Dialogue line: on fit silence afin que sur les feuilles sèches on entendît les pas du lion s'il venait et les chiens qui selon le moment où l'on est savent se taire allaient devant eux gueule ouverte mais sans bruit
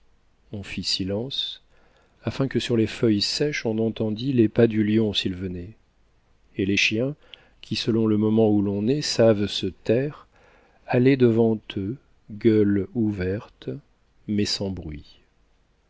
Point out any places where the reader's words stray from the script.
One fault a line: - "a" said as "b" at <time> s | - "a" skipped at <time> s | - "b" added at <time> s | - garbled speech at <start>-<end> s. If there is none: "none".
none